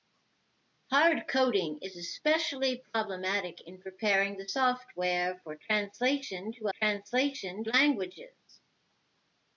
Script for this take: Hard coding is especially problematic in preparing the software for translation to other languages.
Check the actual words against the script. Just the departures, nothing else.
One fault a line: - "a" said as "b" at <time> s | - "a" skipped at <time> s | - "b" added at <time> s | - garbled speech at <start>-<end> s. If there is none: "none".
- "other" said as "translation" at 6.7 s